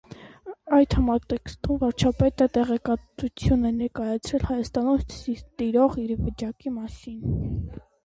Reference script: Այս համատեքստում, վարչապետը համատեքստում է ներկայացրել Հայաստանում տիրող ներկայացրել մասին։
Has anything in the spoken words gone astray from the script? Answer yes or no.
yes